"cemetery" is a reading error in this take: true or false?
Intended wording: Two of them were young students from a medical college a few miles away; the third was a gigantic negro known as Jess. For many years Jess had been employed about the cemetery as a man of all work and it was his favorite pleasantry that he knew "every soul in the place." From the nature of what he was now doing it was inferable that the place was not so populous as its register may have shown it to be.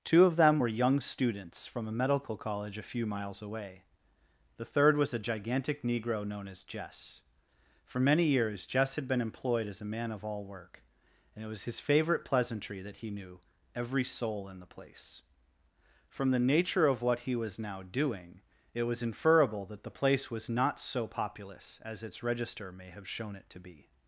true